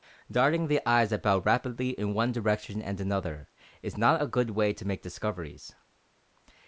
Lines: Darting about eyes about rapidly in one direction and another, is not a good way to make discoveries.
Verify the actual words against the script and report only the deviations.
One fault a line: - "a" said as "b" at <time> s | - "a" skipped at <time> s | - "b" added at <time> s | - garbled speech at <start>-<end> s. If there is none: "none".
- "about" said as "the" at 0.7 s